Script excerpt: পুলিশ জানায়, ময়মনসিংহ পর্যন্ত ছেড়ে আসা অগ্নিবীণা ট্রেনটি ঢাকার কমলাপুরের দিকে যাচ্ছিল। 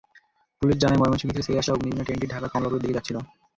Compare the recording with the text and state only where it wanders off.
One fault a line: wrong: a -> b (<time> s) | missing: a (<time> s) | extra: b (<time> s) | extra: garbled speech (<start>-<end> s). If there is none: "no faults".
wrong: পর্যন্ত -> থেকে (1.3 s)